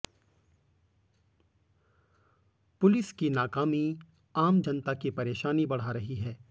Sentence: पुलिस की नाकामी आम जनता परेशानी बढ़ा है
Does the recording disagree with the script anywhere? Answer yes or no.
yes